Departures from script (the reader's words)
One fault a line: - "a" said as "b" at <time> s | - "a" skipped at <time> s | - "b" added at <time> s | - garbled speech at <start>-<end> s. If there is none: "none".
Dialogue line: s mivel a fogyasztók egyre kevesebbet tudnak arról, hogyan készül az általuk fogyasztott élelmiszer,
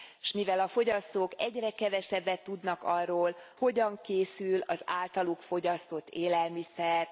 none